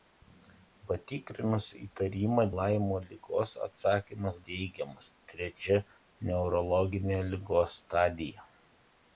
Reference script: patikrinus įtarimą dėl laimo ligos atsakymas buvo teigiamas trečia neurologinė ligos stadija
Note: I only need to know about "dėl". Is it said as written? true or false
false